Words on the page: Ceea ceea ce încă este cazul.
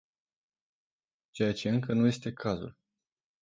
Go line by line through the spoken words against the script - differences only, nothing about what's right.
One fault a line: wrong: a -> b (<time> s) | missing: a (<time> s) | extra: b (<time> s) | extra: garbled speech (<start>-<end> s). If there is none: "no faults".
missing: ceea (1.5 s)
extra: nu (1.9 s)